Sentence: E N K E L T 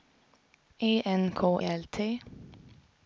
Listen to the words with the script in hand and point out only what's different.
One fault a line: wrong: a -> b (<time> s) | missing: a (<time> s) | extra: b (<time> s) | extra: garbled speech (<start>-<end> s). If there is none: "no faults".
missing: E (1.6 s)